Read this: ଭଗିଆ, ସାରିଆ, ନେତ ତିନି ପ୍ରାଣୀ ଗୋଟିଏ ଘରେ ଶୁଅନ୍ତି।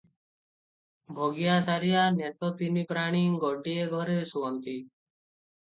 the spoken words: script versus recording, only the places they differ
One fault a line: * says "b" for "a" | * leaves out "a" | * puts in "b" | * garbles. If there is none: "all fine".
all fine